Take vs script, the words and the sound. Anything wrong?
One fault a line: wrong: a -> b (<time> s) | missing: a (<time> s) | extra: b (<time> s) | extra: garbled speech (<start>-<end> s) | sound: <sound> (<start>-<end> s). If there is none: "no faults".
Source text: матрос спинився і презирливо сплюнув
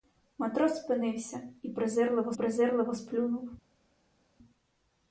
extra: презирливо (2.3 s)